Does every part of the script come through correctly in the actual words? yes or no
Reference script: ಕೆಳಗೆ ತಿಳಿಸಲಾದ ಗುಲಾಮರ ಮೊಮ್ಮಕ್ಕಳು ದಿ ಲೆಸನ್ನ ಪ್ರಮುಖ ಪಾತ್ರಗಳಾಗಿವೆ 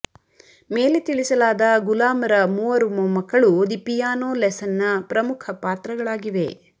no